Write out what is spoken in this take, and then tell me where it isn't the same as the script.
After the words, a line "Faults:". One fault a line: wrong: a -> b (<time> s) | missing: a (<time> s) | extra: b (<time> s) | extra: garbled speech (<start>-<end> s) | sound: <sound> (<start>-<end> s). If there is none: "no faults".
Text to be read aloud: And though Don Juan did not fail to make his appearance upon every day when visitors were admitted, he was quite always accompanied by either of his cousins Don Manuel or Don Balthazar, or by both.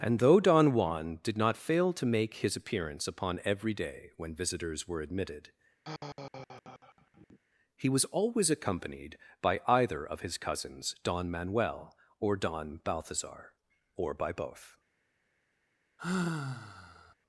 And though Don Juan did not fail to make his appearance upon every day when visitors were admitted, he was always accompanied by either of his cousins Don Manuel or Don Balthazar, or by both.
Faults:
sound: sigh (5.8-7.4 s)
missing: quite (8.0 s)
sound: sigh (16.0-17.1 s)